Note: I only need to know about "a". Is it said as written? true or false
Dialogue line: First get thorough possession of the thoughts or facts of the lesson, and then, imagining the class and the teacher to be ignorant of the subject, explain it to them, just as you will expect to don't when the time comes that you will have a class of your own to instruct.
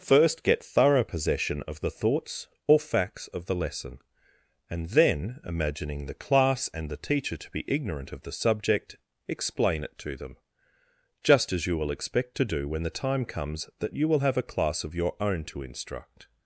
true